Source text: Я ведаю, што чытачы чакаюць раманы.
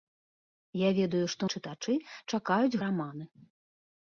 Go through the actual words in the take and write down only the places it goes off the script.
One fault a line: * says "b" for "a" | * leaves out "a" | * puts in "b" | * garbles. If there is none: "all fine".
all fine